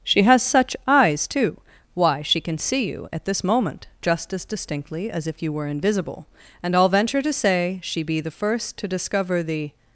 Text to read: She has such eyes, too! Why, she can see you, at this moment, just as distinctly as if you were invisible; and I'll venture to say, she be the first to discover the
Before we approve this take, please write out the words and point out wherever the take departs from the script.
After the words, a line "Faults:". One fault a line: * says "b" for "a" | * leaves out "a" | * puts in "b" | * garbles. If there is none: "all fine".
She has such eyes, too! Why, she can see you, at this moment, just as distinctly as if you were invisible; and I'll venture to say, she be the first to discover the
Faults:
all fine